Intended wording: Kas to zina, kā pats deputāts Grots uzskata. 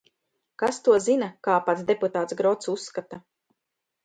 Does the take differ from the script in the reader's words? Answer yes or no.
no